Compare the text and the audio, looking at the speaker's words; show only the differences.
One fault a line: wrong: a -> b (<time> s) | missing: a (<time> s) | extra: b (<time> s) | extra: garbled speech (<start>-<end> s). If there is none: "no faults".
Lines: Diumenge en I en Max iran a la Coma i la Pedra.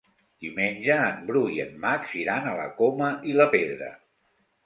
extra: Bru (1.3 s)